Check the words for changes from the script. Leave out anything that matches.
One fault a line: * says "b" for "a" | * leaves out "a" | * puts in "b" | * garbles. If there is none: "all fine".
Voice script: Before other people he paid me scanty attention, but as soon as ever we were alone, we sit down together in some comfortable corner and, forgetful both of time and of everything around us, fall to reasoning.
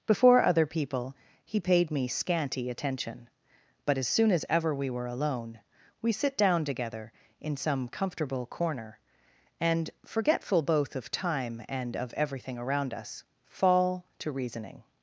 all fine